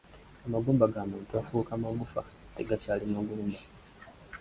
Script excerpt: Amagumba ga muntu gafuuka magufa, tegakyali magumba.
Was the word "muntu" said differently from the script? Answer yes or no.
no